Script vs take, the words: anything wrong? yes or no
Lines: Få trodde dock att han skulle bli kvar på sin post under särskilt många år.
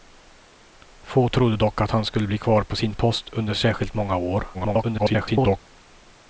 yes